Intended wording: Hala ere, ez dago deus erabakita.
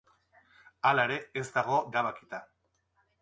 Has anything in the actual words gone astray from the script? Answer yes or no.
yes